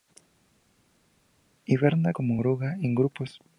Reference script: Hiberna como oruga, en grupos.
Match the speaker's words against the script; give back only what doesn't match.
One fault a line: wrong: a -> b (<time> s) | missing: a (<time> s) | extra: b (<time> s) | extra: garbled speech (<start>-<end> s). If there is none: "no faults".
no faults